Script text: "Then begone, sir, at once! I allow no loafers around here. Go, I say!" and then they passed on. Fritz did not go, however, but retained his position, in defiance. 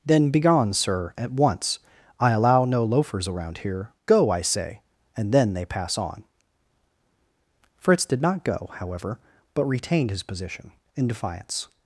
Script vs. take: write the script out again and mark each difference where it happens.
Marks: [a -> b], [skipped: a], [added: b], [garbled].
"Then begone, sir, at once! I allow no loafers around here. Go, I say!" and then they [passed -> pass] on. Fritz did not go, however, but retained his position, in defiance.